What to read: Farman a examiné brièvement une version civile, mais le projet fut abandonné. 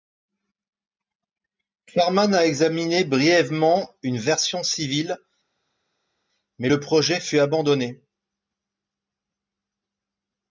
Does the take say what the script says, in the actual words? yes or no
yes